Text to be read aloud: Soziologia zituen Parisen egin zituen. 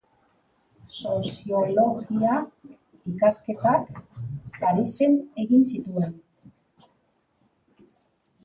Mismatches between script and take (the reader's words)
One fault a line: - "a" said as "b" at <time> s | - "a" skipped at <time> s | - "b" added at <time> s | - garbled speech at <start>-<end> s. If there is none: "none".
- "zituen" said as "ikasketak" at 3.1 s